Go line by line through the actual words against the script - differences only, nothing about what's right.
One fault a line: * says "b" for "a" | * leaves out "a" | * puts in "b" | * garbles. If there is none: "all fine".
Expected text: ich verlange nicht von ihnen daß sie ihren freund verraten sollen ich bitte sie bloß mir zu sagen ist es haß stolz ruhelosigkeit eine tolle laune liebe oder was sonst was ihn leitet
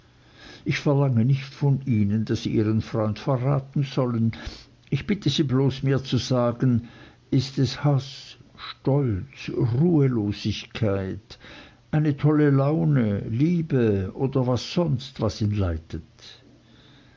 all fine